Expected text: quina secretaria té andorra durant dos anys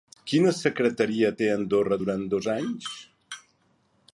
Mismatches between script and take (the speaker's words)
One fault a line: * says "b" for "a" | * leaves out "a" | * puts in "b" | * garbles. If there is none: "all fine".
all fine